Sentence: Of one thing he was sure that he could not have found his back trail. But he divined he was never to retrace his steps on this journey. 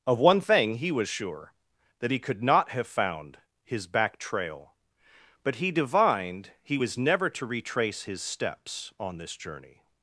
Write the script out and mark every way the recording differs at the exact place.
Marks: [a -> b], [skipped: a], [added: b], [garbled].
Of one thing he was sure that he could not have found his back trail. But he divined he was never to retrace his steps on this journey.